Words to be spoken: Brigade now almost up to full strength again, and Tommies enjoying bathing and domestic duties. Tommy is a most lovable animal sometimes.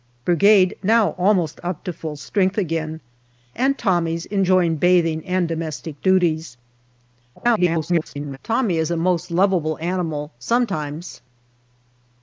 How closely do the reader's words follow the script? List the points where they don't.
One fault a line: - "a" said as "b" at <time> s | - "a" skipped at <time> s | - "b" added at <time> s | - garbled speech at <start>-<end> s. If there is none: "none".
- garbled speech at 7.4-8.4 s